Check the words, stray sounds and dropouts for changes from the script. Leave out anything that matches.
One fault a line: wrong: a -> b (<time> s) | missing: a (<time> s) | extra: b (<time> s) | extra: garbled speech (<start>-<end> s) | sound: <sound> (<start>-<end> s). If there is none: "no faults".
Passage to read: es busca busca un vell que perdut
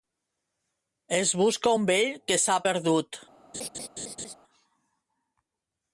missing: busca (1.8 s)
extra: s'ha (2.4 s)
sound: laugh (3.5-4.3 s)